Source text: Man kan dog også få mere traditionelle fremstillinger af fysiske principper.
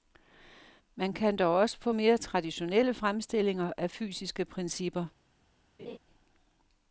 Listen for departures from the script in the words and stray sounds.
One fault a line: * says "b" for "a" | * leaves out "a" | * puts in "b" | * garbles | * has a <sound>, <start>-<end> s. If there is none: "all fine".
* has a laugh, 5.8-6.0 s